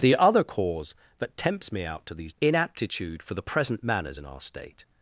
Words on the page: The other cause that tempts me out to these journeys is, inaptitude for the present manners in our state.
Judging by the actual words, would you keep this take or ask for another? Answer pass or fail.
fail